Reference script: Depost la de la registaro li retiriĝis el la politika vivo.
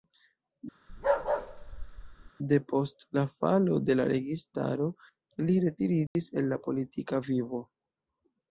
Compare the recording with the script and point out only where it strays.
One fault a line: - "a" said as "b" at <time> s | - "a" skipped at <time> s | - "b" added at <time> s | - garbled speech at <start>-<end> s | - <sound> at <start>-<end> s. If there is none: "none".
- bark at 0.9-2.3 s
- "falo" added at 3.4 s
- dropout at 6.1-6.2 s